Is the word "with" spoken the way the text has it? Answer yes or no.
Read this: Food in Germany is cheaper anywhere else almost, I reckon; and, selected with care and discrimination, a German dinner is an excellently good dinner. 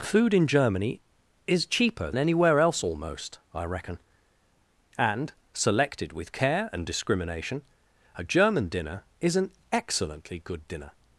yes